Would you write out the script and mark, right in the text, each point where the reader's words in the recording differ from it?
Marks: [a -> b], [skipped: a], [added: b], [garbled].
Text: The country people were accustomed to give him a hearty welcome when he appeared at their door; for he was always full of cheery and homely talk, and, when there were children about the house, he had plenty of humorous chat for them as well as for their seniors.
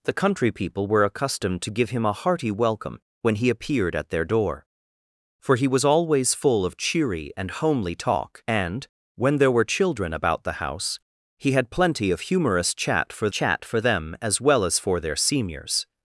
The country people were accustomed to give him a hearty welcome when he appeared at their door; for he was always full of cheery and homely talk, and, when there were children about the house, he had plenty of humorous chat for [added: chat for] them as well as for their seniors.